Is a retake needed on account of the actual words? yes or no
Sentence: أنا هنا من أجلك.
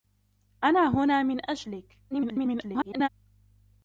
yes